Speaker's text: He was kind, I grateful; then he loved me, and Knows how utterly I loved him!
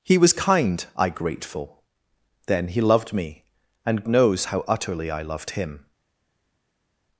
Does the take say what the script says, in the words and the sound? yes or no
yes